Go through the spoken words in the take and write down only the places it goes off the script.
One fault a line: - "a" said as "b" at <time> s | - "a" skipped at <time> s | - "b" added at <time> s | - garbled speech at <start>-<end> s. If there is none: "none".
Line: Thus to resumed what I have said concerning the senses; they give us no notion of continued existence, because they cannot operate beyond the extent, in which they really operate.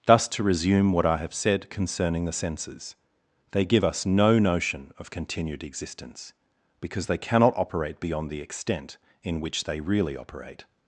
- "resumed" said as "resume" at 0.4 s